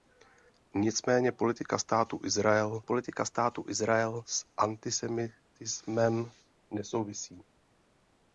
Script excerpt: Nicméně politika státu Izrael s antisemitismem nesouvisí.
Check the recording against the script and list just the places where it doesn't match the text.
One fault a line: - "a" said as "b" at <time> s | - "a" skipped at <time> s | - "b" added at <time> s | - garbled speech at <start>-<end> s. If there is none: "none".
- "politika státu Izrael" added at 2.8 s